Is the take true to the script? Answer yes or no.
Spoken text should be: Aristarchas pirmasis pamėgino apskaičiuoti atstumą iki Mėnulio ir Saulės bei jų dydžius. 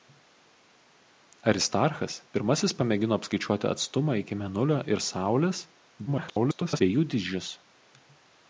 no